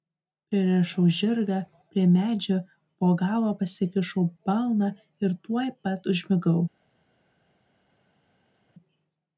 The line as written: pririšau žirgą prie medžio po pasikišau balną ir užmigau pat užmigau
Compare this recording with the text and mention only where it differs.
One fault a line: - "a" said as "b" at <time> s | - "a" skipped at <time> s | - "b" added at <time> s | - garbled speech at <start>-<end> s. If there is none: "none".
- "galva" added at 3.2 s
- "užmigau" said as "tuoj" at 5.5 s